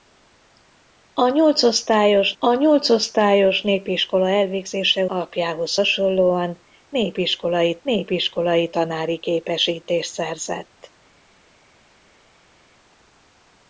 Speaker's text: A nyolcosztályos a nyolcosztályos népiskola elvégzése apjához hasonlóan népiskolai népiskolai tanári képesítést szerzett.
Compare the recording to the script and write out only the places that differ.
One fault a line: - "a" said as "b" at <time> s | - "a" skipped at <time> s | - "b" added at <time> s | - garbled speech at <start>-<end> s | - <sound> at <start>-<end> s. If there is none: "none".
none